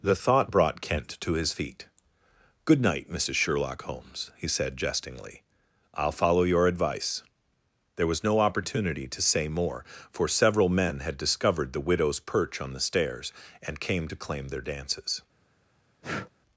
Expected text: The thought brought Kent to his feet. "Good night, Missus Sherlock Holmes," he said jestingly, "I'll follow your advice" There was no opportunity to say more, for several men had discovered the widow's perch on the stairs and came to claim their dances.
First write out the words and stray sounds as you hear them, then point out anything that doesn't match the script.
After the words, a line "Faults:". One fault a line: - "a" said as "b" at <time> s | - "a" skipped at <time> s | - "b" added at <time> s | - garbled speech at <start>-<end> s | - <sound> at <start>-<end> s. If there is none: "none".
The thought brought Kent to his feet. "Good night, Missus Sherlock Holmes," he said jestingly, "I'll follow your advice" There was no opportunity to say more, for several men had discovered the widow's perch on the stairs and came to claim their dances.
Faults:
- breath at 16.0-16.3 s